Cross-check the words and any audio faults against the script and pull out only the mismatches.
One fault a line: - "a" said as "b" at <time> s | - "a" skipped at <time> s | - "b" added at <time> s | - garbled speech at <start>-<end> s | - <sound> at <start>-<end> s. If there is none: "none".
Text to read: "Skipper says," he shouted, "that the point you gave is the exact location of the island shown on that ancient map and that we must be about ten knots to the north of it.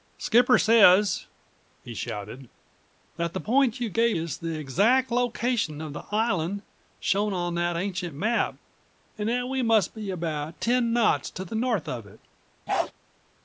- bark at 12.7-12.9 s